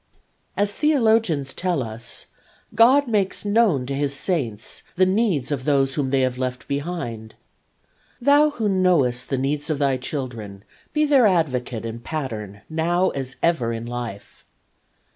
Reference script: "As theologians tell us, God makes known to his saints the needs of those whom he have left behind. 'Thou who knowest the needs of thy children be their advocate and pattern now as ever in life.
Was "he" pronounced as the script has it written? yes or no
no